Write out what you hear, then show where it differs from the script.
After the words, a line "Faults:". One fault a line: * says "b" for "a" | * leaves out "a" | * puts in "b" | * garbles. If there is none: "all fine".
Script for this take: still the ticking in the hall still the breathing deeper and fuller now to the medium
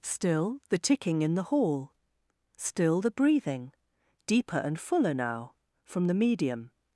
still the ticking in the hall still the breathing deeper and fuller now from the medium
Faults:
* says "from" for "to"